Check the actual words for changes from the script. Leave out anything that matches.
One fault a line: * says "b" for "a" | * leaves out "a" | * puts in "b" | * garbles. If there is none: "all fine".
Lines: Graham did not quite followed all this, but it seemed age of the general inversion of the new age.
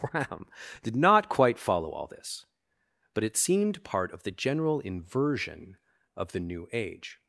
* says "follow" for "followed"
* says "part" for "age"